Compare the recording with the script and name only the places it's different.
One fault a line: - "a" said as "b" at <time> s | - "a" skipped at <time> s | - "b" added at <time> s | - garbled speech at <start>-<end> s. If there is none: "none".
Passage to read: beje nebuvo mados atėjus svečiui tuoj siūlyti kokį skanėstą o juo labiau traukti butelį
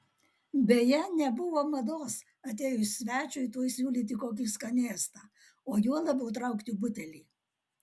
none